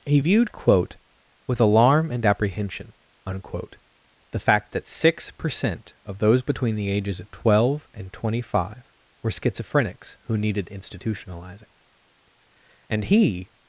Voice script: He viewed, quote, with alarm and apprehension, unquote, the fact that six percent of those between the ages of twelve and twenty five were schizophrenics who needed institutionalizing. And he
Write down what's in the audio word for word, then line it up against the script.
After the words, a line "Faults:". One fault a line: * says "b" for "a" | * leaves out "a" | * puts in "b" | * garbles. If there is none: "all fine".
He viewed, quote, with alarm and apprehension, unquote, the fact that six percent of those between the ages of twelve and twenty five were schizophrenics who needed institutionalizing. And he
Faults:
all fine